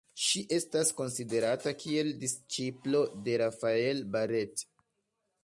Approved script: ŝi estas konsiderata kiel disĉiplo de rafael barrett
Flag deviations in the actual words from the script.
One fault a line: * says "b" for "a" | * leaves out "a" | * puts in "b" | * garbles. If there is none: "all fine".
all fine